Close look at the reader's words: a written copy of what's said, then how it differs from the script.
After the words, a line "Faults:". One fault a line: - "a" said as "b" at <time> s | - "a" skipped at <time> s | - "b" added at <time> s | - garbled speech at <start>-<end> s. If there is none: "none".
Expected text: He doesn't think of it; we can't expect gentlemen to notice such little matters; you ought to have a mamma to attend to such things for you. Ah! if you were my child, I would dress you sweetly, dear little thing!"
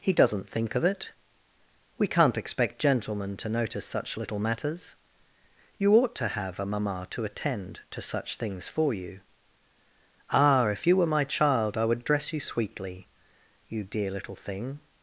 He doesn't think of it; we can't expect gentlemen to notice such little matters; you ought to have a mamma to attend to such things for you. Ah! if you were my child, I would dress you sweetly, you dear little thing!"
Faults:
- "you" added at 13.7 s